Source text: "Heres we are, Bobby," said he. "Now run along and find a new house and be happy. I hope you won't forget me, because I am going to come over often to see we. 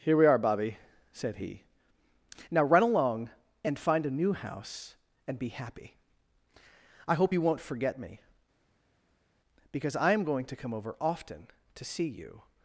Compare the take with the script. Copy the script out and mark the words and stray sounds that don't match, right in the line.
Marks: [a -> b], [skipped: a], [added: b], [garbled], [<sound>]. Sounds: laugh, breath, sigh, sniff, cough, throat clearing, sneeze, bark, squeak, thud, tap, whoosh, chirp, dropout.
["Heres -> Here] we are, Bobby," said he. "Now run along and find a new house and be happy. I hope you won't forget me, because I am going to come over often to see [we. -> you]